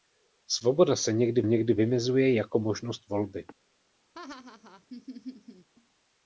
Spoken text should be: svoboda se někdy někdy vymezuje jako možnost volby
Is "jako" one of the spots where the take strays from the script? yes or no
no